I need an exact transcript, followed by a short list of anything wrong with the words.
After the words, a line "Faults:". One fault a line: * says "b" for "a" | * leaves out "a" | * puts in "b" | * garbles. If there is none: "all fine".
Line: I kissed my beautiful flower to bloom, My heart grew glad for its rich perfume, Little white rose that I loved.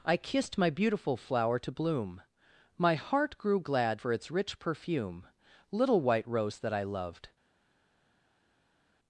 I kissed my beautiful flower to bloom, My heart grew glad for its rich perfume, Little white rose that I loved.
Faults:
all fine